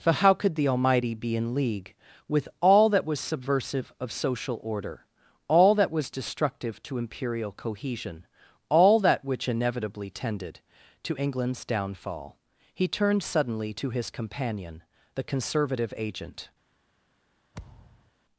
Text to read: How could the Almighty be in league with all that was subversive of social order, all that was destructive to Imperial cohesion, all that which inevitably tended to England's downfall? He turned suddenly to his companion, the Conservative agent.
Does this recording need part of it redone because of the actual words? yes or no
yes